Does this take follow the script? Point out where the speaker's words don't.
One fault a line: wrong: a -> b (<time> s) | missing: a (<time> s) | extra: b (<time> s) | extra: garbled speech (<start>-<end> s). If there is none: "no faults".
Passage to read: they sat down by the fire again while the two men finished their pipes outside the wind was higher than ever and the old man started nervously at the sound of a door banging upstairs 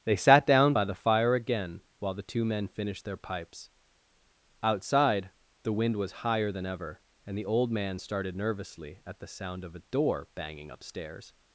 no faults